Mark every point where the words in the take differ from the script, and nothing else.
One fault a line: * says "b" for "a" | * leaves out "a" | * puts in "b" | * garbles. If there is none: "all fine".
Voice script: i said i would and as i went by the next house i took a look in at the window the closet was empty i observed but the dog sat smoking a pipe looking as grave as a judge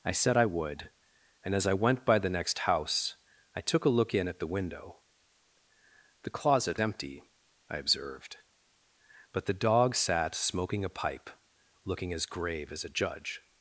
* leaves out "was"